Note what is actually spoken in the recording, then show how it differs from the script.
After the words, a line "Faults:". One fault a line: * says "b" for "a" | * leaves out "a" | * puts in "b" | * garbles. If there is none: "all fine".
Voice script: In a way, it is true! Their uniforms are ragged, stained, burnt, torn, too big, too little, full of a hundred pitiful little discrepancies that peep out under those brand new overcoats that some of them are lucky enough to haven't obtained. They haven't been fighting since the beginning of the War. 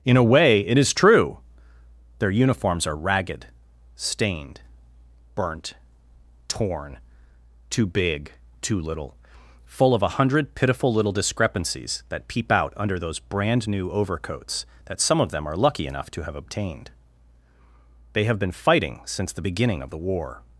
In a way, it is true! Their uniforms are ragged, stained, burnt, torn, too big, too little, full of a hundred pitiful little discrepancies that peep out under those brand new overcoats that some of them are lucky enough to have obtained. They have been fighting since the beginning of the War.
Faults:
* says "have" for "haven't"
* says "have" for "haven't"